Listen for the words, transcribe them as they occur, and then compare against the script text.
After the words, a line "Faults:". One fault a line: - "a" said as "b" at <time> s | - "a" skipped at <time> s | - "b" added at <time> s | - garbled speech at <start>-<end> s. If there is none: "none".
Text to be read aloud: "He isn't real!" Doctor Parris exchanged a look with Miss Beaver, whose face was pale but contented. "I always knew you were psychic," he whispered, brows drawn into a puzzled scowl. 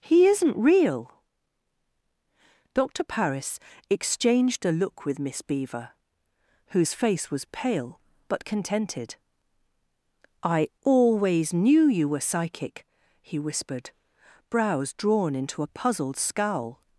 "He isn't real!" Doctor Parris exchanged a look with Miss Beaver, whose face was pale but contented. "I always knew you were psychic," he whispered, brows drawn into a puzzled scowl.
Faults:
none